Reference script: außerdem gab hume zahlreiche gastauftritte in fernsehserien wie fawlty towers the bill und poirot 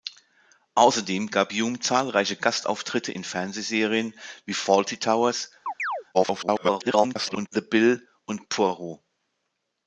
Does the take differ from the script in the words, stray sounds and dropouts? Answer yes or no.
yes